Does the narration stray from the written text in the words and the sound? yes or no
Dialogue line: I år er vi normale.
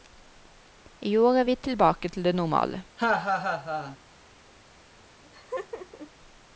yes